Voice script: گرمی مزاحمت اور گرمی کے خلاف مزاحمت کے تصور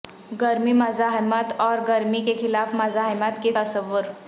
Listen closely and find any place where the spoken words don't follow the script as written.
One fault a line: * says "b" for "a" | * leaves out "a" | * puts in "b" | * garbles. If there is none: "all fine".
all fine